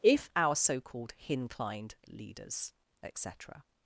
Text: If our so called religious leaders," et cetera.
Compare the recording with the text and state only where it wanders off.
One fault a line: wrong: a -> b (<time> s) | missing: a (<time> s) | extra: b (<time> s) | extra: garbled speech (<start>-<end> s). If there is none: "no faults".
wrong: religious -> hinclined (1.2 s)